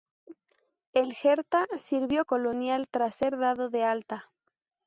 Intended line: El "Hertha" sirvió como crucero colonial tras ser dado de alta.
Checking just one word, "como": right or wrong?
wrong